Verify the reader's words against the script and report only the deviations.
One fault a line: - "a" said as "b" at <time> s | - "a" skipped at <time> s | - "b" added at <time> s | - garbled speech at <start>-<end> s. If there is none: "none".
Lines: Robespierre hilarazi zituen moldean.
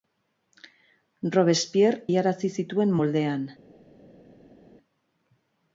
none